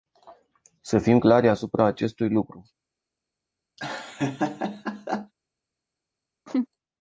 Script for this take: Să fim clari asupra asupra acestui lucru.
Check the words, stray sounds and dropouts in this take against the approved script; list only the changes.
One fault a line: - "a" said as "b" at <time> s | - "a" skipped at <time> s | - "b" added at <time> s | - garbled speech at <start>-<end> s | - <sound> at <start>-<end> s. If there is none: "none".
- "asupra" skipped at 1.8 s
- laugh at 3.8-5.3 s
- laugh at 6.5-6.7 s